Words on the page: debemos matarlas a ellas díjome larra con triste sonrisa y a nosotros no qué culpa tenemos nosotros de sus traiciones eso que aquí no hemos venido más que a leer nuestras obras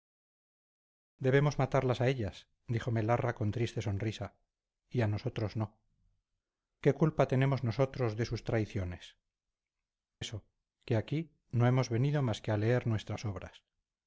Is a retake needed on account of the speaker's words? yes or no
no